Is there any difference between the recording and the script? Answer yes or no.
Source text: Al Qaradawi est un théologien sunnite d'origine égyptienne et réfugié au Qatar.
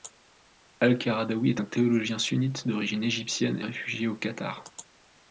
yes